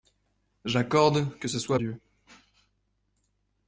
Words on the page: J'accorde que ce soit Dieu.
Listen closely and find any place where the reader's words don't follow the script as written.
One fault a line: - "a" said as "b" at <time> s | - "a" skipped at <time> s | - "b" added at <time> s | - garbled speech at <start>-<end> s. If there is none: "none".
none